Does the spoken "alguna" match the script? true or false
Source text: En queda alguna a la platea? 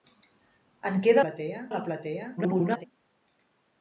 false